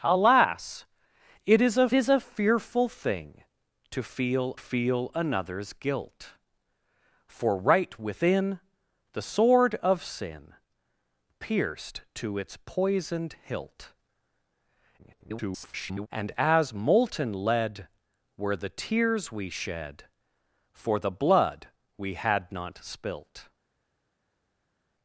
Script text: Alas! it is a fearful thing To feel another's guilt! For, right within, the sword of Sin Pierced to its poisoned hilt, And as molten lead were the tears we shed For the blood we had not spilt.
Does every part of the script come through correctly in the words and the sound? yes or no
no